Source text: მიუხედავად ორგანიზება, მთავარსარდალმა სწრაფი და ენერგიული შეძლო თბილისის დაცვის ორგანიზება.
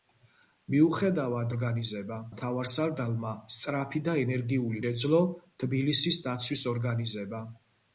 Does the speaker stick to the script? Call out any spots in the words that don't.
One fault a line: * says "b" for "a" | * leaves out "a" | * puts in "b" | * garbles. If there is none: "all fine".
all fine